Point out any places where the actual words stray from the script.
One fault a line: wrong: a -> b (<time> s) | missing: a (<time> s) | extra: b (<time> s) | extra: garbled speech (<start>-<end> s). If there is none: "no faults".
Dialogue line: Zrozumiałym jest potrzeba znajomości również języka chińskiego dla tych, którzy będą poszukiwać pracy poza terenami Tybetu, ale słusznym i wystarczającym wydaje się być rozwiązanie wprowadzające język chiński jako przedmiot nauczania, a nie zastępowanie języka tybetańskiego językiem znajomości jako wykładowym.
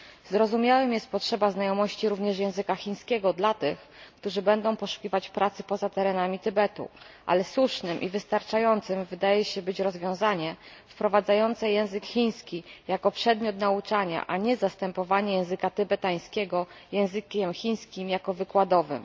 wrong: znajomości -> chińskim (17.5 s)